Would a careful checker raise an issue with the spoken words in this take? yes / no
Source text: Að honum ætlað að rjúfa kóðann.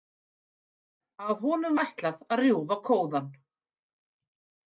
no